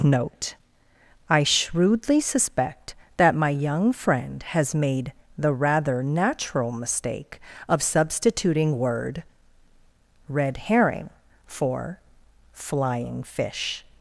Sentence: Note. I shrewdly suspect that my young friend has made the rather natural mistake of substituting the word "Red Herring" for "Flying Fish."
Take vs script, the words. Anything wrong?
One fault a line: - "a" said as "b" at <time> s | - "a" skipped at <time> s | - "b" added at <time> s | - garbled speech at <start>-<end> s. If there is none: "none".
- "the" skipped at 8.8 s